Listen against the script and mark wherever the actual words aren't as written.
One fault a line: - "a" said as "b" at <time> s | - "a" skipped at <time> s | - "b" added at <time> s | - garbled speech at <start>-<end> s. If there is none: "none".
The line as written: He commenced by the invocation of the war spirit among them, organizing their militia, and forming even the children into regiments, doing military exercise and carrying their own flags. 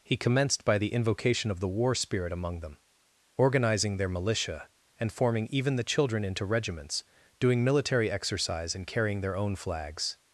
none